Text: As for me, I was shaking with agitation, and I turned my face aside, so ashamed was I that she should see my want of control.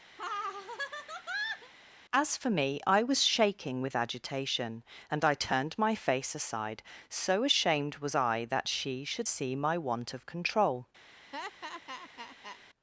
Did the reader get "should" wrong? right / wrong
right